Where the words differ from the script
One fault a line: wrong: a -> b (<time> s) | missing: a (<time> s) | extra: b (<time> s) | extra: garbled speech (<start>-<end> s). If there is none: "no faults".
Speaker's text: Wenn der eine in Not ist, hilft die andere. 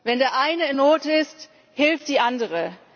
no faults